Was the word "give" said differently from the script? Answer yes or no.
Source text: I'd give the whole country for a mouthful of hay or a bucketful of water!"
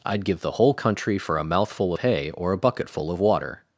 no